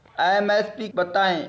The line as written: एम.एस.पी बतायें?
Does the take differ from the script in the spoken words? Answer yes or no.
no